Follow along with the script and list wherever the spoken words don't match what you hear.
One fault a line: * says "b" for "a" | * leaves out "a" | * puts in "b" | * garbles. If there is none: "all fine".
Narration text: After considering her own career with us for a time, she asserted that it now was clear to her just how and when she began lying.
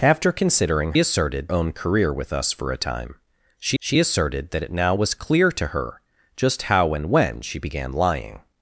* says "asserted" for "her"
* puts in "she"